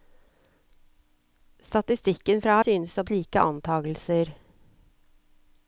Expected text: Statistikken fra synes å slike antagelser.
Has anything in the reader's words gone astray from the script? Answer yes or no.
no